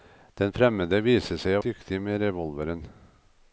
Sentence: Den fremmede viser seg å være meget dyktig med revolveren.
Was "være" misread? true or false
true